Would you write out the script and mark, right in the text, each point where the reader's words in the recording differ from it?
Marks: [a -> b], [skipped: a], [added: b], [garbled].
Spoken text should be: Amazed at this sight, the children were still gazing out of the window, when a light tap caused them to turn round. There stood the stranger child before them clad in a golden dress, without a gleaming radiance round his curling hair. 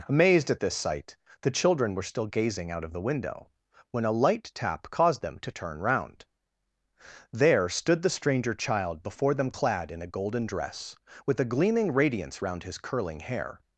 Amazed at this sight, the children were still gazing out of the window, when a light tap caused them to turn round. There stood the stranger child before them clad in a golden dress, [without -> with] a gleaming radiance round his curling hair.